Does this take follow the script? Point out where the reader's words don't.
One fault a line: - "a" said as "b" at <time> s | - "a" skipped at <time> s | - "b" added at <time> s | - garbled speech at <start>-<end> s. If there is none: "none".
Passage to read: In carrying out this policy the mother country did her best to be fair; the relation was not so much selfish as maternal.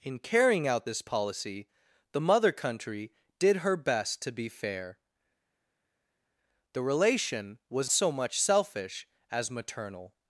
- "not" skipped at 7.9 s